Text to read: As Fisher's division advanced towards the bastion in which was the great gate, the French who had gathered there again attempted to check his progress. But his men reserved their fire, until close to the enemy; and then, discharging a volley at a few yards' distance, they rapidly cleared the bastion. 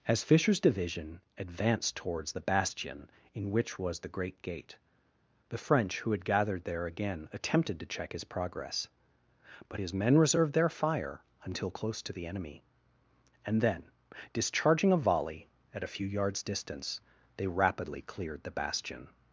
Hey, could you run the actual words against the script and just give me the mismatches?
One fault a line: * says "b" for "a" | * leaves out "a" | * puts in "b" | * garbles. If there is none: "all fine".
all fine